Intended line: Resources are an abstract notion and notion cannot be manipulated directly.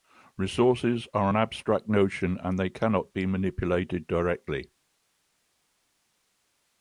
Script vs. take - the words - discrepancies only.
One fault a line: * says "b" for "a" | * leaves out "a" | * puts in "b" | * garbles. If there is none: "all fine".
* says "they" for "notion"